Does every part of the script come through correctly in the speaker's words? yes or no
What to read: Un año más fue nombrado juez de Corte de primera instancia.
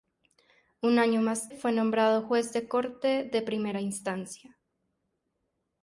yes